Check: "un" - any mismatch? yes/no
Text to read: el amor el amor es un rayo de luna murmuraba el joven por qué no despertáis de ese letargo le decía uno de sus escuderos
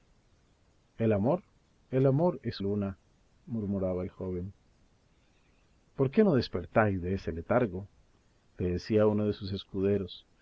yes